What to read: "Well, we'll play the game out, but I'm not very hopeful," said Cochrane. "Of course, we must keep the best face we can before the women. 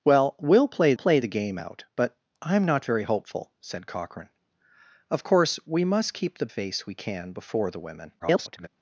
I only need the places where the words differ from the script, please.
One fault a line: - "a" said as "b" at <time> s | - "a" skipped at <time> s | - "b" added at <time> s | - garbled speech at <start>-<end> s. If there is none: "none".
- "play" added at 0.9 s
- "best" skipped at 6.5 s
- garbled speech at 8.2-8.7 s